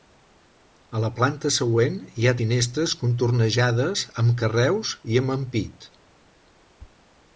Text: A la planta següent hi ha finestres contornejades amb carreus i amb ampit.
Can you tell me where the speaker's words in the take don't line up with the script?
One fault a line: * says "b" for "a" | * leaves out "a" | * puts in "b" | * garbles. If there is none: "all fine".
all fine